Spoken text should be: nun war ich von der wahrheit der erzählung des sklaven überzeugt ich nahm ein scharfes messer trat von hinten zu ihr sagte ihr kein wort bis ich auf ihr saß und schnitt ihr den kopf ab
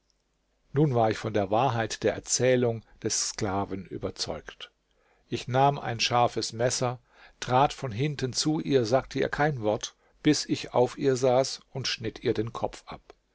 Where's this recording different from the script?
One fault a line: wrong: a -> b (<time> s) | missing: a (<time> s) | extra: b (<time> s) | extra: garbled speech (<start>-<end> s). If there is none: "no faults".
no faults